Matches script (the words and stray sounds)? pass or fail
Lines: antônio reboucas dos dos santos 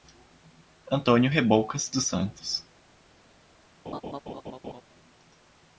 fail